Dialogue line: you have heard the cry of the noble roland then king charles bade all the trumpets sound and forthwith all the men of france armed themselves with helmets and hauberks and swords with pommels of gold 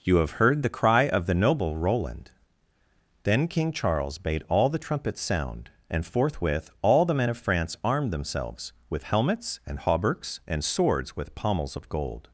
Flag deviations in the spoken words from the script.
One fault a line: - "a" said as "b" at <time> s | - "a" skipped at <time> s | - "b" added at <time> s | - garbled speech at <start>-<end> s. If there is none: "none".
none